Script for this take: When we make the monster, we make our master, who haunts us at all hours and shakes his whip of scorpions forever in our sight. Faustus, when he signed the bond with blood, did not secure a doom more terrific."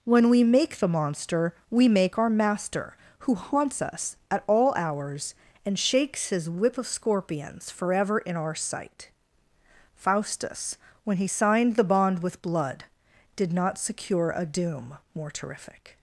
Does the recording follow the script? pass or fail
pass